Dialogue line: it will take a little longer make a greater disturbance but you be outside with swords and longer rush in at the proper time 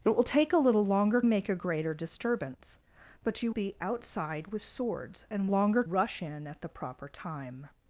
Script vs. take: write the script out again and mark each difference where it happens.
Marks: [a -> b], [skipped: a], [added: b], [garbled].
it will take a little longer make a greater disturbance but you be outside with swords and longer rush in at the proper time